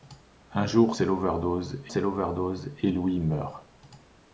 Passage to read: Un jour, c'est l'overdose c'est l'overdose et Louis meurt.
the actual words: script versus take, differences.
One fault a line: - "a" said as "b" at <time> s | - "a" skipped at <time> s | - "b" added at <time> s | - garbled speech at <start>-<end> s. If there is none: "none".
none